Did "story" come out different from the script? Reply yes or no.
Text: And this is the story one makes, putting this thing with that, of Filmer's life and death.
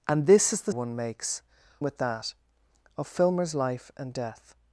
yes